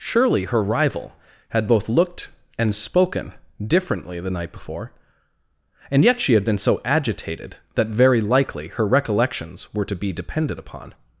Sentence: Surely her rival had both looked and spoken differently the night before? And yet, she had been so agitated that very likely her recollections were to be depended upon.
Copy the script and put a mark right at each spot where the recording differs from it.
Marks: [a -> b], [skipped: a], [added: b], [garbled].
Surely her rival had both looked and spoken differently the night before? And yet, she had been so agitated that very likely her recollections were to be depended upon.